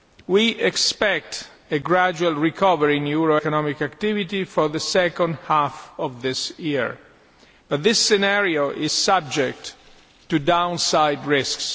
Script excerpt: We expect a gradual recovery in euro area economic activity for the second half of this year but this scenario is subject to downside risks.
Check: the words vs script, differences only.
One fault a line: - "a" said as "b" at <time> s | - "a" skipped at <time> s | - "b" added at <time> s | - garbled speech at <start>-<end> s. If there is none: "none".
- "area" skipped at 3.4 s